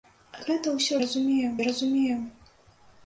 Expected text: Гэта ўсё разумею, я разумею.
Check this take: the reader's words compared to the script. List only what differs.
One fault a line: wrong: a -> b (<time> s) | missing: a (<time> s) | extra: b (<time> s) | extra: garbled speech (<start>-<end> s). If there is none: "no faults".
no faults